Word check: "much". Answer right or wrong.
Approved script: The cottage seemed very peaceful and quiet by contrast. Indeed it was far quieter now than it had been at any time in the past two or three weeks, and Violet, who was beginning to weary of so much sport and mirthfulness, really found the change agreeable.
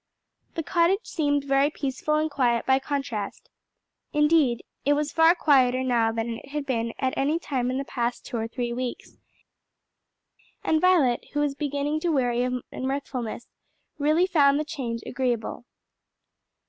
wrong